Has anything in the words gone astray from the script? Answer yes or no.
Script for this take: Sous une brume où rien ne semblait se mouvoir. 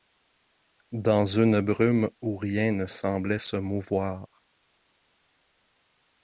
yes